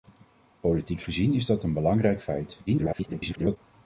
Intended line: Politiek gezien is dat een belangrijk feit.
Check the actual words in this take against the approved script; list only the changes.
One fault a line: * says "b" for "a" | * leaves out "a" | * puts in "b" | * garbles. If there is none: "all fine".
* garbles